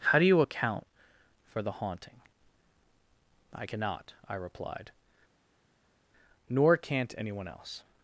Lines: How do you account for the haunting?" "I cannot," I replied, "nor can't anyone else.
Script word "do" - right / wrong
right